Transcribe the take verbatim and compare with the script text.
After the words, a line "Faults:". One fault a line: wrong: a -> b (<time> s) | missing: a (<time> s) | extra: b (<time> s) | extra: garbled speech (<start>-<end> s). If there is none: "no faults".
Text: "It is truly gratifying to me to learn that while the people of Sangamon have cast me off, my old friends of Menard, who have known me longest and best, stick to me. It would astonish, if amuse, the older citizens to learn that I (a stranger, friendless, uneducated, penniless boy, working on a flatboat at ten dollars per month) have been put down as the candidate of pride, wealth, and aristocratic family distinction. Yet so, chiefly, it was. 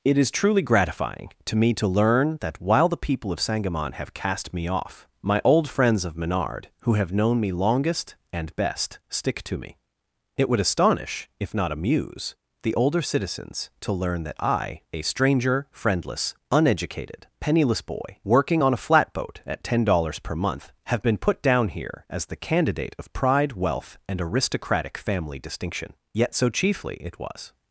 "It is truly gratifying to me to learn that while the people of Sangamon have cast me off, my old friends of Menard, who have known me longest and best, stick to me. It would astonish, if not amuse, the older citizens to learn that I (a stranger, friendless, uneducated, penniless boy, working on a flatboat at ten dollars per month) have been put down here as the candidate of pride, wealth, and aristocratic family distinction. Yet so, chiefly, it was.
Faults:
extra: not (11.5 s)
extra: here (21.7 s)